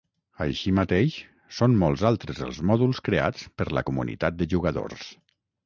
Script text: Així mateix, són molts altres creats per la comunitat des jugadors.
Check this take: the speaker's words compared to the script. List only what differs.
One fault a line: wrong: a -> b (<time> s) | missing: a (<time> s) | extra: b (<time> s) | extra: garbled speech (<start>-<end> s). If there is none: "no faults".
extra: els mòduls (2.5 s)
wrong: des -> de (4.4 s)